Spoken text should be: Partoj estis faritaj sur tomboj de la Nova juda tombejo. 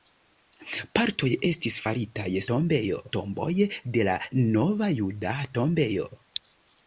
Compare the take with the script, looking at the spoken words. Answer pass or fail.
fail